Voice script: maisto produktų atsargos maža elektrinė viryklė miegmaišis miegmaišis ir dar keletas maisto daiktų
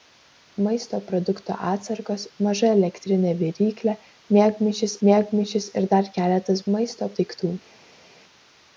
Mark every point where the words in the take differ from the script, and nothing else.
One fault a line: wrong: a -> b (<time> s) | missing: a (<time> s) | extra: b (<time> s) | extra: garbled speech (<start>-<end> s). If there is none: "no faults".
no faults